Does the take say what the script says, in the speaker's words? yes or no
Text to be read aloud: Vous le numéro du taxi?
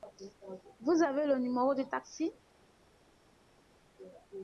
no